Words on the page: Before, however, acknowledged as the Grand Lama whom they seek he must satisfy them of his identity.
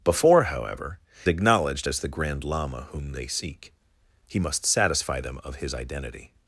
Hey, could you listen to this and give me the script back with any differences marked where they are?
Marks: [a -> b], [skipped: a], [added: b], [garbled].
Before, however, acknowledged as the Grand Lama whom they seek he must satisfy them of his identity.